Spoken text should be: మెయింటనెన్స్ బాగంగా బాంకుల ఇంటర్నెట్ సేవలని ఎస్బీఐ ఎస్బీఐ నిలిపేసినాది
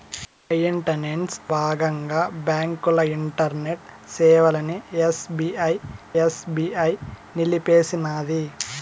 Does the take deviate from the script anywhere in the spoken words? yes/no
no